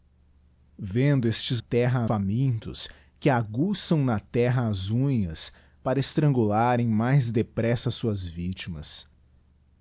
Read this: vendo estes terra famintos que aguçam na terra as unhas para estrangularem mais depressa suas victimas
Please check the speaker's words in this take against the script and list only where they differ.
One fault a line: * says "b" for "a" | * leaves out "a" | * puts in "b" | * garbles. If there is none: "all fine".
all fine